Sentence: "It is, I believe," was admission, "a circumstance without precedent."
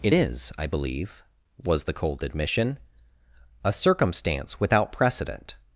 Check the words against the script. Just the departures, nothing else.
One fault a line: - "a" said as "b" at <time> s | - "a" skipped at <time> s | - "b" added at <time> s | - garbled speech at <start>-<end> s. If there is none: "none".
- "the cold" added at 1.8 s